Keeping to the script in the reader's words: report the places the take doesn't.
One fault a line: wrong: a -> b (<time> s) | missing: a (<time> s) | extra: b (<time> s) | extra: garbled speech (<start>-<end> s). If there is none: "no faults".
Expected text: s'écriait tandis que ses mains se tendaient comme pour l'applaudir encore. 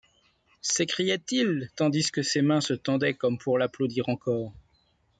extra: il (1.3 s)